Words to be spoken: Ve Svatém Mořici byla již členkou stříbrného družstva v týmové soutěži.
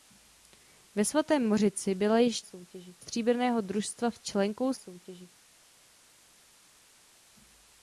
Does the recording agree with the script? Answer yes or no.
no